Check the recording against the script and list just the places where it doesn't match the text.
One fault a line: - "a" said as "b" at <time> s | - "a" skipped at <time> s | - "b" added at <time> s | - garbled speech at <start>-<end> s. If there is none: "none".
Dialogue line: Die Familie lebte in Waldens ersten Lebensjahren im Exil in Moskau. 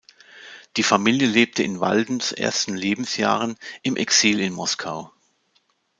none